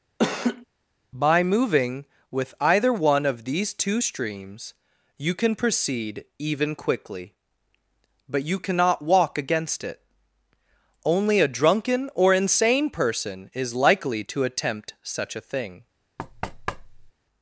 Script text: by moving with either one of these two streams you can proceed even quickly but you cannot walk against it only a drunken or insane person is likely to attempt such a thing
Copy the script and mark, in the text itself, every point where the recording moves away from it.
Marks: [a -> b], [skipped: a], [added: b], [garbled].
by moving with either one of these two streams you can proceed even quickly but you cannot walk against it only a drunken or insane person is likely to attempt such a thing